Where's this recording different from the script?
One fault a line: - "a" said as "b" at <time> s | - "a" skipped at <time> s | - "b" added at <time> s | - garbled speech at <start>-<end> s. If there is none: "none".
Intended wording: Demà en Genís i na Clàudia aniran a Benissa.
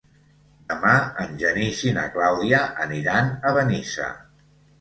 none